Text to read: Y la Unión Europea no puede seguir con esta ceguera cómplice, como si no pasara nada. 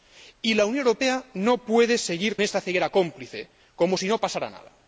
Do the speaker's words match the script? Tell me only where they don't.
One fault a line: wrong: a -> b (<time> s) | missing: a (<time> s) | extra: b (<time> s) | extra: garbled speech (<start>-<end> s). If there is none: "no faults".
missing: con (2.4 s)